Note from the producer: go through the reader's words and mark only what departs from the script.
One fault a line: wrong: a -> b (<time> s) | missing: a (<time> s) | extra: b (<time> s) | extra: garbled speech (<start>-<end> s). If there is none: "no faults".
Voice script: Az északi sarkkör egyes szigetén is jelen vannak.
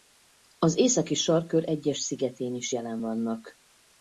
no faults